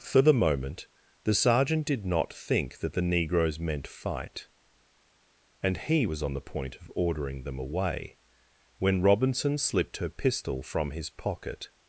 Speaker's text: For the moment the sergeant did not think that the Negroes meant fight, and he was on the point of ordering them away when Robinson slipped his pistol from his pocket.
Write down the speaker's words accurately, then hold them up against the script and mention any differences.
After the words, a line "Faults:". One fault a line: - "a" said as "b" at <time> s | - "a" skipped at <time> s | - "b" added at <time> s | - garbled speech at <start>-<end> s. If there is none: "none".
For the moment the sergeant did not think that the Negroes meant fight, and he was on the point of ordering them away when Robinson slipped her pistol from his pocket.
Faults:
- "his" said as "her" at 10.0 s